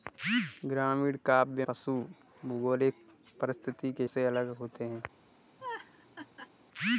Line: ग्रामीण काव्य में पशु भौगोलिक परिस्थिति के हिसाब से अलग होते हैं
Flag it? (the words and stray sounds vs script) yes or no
yes